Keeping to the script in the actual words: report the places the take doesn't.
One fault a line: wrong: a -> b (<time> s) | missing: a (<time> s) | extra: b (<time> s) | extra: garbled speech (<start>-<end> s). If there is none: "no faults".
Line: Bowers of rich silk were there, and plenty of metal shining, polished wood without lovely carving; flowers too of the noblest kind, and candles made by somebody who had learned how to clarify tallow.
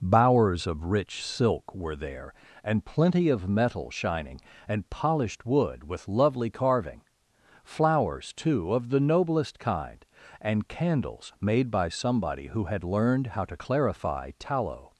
extra: and (4.7 s)
wrong: without -> with (5.8 s)